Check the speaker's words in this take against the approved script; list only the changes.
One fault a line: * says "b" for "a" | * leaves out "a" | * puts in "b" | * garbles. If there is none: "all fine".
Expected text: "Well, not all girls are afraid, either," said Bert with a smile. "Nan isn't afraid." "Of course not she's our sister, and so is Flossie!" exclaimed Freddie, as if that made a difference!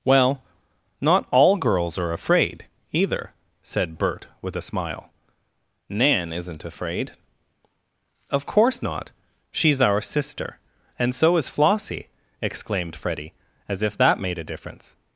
all fine